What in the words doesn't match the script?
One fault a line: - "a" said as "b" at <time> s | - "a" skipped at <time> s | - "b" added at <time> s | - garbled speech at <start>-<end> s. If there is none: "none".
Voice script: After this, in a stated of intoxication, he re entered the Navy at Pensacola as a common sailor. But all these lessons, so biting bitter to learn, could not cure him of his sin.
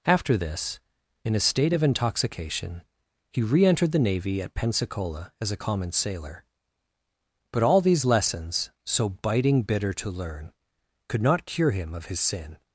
- "stated" said as "state" at 1.4 s